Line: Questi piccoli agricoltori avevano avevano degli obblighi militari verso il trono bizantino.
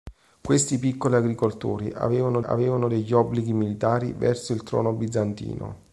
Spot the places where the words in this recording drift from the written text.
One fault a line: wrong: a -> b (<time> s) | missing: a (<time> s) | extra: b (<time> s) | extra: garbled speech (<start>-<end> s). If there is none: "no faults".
no faults